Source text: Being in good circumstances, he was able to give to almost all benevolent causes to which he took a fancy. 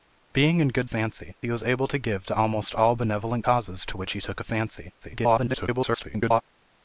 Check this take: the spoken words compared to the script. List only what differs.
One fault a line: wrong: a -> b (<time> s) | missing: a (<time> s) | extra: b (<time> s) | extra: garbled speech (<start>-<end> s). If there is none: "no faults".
wrong: circumstances -> fancy (0.9 s)
extra: garbled speech (5.0-6.4 s)